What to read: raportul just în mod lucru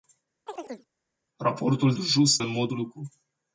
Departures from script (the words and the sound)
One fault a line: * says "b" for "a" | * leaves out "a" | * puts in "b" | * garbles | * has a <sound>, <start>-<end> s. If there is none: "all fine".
* has a chirp, 0.5-0.9 s